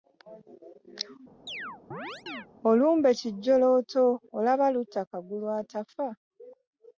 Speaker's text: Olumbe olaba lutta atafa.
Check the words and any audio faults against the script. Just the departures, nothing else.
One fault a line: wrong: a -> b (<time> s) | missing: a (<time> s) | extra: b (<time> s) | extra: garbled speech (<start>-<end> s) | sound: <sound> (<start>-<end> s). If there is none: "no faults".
sound: chirp (1.5-2.5 s)
extra: kijjolooto (3.2 s)
extra: kagulu (5.1 s)